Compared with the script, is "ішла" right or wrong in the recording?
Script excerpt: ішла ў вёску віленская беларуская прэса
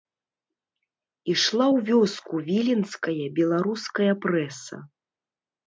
right